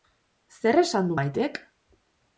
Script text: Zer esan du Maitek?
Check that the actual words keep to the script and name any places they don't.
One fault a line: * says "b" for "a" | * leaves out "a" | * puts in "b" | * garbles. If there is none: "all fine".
all fine